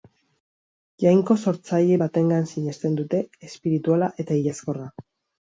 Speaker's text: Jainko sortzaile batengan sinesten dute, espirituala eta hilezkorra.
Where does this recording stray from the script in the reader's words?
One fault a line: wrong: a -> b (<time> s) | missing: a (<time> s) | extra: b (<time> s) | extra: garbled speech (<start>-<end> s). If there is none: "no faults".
no faults